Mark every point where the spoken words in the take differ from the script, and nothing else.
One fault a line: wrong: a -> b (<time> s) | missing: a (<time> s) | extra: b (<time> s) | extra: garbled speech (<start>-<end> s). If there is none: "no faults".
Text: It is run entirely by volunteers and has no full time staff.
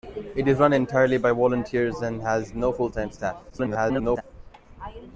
extra: garbled speech (3.5-4.2 s)